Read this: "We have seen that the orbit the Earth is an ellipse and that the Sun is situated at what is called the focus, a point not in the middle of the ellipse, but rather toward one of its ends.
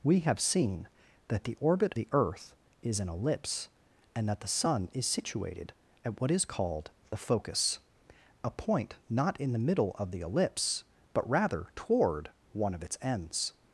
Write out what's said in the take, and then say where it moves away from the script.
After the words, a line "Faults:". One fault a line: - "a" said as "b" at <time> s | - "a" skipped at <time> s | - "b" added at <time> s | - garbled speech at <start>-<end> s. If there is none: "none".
"We have seen that the orbit the Earth is an ellipse and that the Sun is situated at what is called the focus, a point not in the middle of the ellipse, but rather toward one of its ends.
Faults:
none